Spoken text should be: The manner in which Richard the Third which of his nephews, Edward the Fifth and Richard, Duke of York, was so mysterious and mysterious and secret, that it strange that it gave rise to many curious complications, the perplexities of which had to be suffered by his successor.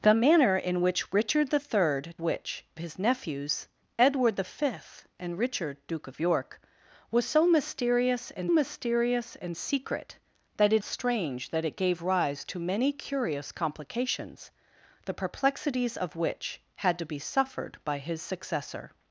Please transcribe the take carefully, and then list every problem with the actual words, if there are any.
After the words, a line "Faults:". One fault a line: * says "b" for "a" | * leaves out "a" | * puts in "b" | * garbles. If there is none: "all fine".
The manner in which Richard the Third which of his nephews, Edward the Fifth and Richard, Duke of York, was so mysterious and mysterious and secret, that it strange that it gave rise to many curious complications, the perplexities of which had to be suffered by his successor.
Faults:
all fine